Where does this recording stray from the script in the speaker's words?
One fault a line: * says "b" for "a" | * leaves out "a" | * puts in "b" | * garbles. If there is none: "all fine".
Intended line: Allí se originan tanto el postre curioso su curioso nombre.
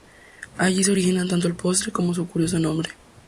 * says "como" for "curioso"